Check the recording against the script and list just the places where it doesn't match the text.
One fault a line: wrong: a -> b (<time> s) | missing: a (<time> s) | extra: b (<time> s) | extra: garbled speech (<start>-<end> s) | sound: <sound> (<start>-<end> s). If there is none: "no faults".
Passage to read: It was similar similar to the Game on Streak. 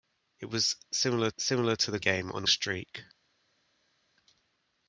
no faults